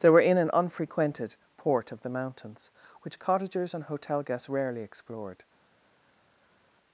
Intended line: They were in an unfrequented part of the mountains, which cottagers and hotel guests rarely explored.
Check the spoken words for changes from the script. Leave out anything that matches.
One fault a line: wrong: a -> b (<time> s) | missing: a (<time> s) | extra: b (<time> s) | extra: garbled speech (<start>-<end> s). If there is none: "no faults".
wrong: part -> port (1.6 s)